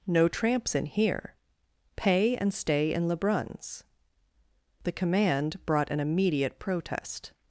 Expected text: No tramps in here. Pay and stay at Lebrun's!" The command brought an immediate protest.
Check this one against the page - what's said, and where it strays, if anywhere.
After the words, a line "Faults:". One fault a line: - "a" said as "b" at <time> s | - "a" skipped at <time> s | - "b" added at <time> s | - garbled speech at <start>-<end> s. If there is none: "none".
No tramps in here. Pay and stay in Lebrun's!" The command brought an immediate protest.
Faults:
- "at" said as "in" at 2.9 s